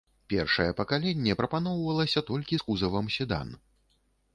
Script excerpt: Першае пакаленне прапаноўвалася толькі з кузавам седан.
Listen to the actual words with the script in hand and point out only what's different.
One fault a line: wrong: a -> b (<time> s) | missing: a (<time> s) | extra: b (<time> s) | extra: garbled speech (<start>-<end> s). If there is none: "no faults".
no faults